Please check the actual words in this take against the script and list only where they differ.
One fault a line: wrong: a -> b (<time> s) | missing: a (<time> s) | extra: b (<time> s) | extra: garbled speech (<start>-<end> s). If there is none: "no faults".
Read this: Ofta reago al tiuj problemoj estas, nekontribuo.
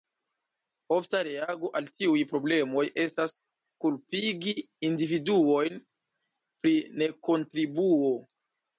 extra: kulpigi individuojn pri (3.9 s)